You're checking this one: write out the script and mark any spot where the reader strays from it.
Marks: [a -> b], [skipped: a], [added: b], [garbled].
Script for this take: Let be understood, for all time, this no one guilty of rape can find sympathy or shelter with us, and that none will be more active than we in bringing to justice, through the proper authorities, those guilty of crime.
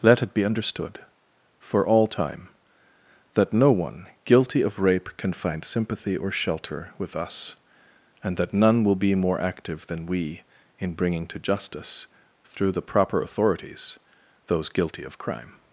Let [added: it] be understood, for all time, [this -> that] no one guilty of rape can find sympathy or shelter with us, and that none will be more active than we in bringing to justice, through the proper authorities, those guilty of crime.